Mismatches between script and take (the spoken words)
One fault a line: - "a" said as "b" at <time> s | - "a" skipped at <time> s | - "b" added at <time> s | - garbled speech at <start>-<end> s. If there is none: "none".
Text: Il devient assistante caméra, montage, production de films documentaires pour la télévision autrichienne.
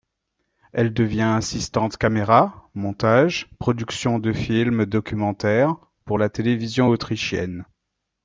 - "Il" said as "Elle" at 0.7 s